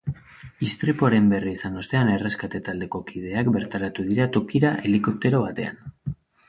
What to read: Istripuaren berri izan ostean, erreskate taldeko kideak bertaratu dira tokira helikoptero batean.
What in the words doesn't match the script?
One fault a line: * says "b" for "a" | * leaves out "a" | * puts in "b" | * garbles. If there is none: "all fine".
all fine